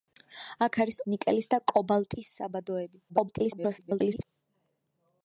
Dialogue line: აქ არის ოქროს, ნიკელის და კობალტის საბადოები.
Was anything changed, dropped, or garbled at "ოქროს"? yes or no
yes